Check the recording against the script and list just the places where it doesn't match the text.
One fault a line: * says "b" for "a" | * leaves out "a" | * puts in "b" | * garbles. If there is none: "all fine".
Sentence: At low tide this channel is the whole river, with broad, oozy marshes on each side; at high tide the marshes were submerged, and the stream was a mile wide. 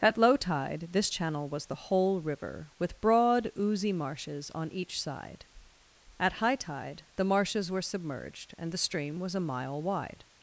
* says "was" for "is"